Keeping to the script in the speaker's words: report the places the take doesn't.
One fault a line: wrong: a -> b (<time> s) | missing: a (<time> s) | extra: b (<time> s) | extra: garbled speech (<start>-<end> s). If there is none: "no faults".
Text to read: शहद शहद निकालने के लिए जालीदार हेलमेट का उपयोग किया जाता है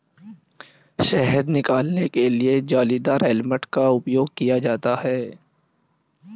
missing: शहद (1.5 s)